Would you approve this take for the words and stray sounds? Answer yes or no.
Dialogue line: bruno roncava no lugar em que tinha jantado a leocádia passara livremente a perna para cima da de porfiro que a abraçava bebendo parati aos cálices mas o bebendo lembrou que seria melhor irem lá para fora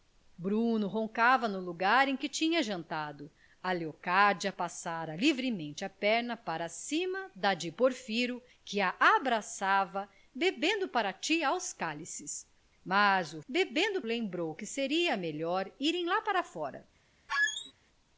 no